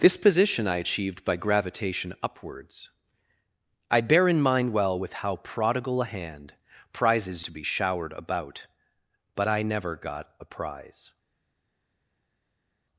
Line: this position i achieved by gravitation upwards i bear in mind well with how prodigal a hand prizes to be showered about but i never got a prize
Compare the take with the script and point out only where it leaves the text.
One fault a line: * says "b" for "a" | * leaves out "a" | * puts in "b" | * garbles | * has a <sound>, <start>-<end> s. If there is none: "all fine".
all fine